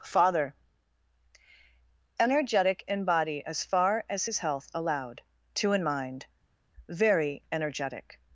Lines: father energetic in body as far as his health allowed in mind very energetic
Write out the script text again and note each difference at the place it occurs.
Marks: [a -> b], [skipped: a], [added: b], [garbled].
father energetic in body as far as his health allowed [added: two] in mind very energetic